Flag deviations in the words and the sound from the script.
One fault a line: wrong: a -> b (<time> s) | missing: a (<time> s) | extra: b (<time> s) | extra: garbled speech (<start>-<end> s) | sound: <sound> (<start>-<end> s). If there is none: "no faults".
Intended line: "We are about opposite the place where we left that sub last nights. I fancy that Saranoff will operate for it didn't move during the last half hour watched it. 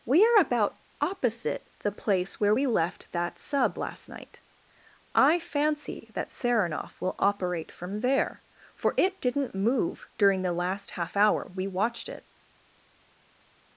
wrong: nights -> night (4.1 s)
extra: from there (7.7 s)
extra: we (11.5 s)